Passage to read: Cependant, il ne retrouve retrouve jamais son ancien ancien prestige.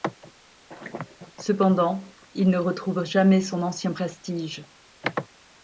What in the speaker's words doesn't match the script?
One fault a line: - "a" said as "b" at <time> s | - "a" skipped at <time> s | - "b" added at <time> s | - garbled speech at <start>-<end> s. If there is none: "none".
- "retrouve" skipped at 3.0 s
- "ancien" skipped at 3.9 s